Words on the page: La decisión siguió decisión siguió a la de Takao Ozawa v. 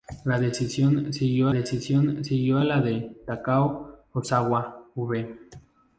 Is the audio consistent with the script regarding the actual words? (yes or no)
yes